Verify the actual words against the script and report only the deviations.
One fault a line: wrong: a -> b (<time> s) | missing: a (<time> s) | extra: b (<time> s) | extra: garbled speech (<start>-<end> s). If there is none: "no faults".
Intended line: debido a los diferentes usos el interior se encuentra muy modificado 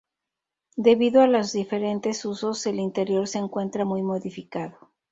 no faults